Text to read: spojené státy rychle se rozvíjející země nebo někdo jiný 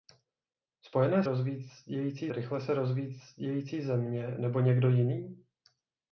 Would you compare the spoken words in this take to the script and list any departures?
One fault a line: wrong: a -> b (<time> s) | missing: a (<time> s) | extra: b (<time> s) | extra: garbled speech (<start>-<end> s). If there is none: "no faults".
wrong: státy -> rozvíjející (1.2 s)